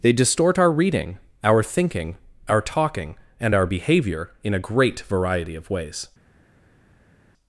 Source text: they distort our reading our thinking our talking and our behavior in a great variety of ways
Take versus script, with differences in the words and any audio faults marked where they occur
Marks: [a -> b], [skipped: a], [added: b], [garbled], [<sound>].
they distort our reading our thinking our talking and our behavior in a great variety of ways